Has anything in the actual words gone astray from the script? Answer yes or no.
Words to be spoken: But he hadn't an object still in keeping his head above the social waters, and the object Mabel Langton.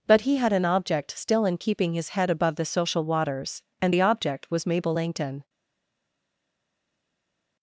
yes